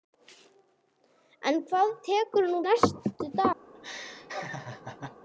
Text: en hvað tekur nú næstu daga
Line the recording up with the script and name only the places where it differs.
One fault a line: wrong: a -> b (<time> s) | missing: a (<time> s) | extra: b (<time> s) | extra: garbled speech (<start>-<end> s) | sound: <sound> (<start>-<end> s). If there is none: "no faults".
sound: laugh (3.7-5.2 s)